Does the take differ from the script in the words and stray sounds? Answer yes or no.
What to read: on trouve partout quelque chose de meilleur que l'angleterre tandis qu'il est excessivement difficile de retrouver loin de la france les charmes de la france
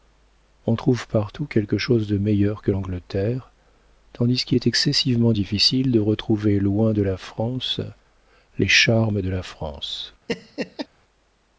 yes